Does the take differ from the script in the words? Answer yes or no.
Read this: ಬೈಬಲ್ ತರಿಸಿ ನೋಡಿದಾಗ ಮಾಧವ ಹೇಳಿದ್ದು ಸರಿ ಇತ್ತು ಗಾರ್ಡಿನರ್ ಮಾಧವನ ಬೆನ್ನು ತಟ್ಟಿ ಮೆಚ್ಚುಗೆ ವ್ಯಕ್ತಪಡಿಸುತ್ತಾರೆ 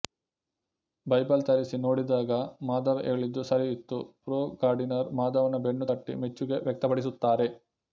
yes